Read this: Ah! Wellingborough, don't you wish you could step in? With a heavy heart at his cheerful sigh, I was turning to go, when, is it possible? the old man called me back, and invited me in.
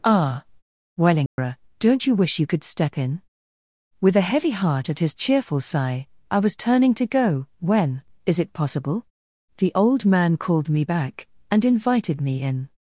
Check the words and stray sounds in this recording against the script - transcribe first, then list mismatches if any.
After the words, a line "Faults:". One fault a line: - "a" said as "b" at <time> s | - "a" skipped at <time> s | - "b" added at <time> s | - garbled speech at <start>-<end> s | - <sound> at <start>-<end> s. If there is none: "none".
Ah! Wellingborough, don't you wish you could step in? With a heavy heart at his cheerful sigh, I was turning to go, when, is it possible? the old man called me back, and invited me in.
Faults:
- dropout at 1.3-1.4 s